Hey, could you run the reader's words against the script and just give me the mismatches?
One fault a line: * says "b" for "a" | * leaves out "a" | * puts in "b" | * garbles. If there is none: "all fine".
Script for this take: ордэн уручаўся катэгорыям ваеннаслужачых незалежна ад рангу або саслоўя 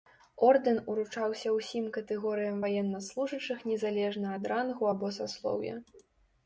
* puts in "ўсім"